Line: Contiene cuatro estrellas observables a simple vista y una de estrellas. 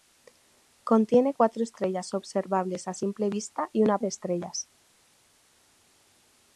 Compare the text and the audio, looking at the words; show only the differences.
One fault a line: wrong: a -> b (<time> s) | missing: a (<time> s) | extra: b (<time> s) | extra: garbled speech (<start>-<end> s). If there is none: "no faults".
no faults